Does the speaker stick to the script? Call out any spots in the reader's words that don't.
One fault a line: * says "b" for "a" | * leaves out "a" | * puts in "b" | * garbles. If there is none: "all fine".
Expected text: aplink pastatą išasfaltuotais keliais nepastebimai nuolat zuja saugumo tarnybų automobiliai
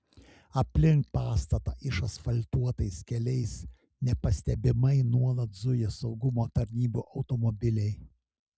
all fine